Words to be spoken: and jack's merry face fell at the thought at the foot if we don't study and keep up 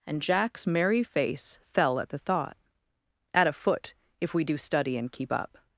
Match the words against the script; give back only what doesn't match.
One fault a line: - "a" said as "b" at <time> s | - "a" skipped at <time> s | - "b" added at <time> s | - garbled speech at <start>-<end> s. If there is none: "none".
- "the" said as "a" at 3.5 s
- "don't" said as "do" at 4.4 s